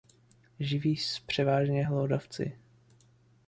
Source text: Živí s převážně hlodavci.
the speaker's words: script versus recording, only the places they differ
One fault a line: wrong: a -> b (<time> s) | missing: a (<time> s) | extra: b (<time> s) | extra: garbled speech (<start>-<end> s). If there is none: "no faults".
no faults